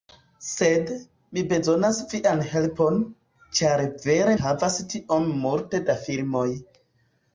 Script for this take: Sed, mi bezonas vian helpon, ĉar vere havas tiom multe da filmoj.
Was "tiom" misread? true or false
false